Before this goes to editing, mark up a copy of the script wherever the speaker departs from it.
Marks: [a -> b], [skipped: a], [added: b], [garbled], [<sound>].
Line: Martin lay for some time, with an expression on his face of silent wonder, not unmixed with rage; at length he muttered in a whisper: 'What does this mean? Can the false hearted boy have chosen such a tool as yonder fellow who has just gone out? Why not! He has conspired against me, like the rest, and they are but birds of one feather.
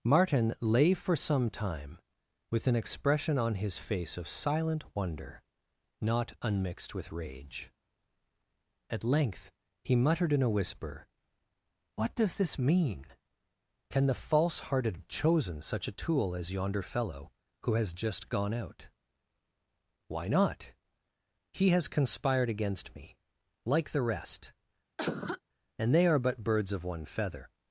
Martin lay for some time, with an expression on his face of silent wonder, not unmixed with rage; at length he muttered in a whisper: 'What does this mean? Can the false hearted [skipped: boy have] chosen such a tool as yonder fellow who has just gone out? Why not! He has conspired against me, like the rest, [cough] and they are but birds of one feather.